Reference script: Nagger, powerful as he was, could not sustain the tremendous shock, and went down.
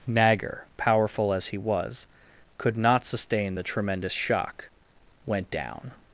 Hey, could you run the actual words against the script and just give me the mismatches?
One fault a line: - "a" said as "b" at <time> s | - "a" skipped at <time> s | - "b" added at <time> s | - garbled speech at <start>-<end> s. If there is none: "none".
- "and" skipped at 4.6 s